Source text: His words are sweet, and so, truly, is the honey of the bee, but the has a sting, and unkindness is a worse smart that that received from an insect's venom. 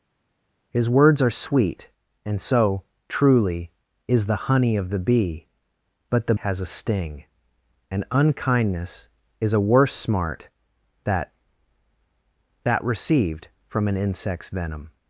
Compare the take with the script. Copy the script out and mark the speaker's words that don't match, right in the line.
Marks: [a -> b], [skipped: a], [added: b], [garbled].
His words are sweet, and so, truly, is the honey of the bee, but the has a sting, and unkindness is a worse smart that that received from an insect's venom.